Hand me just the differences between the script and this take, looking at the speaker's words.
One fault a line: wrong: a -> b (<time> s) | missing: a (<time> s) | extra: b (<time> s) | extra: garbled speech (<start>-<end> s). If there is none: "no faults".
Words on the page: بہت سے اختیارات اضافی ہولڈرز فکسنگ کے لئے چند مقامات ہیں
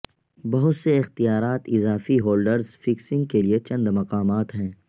no faults